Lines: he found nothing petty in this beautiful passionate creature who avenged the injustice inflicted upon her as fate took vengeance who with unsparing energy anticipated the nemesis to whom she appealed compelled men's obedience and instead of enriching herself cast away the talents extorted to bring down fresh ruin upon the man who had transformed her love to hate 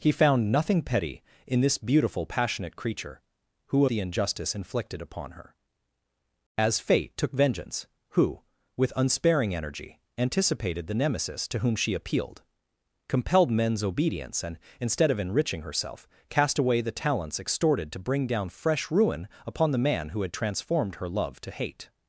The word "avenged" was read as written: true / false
false